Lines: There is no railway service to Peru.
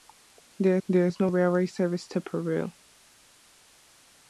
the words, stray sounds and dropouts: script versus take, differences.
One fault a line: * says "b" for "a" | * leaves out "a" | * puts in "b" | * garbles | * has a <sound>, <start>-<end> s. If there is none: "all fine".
* puts in "there"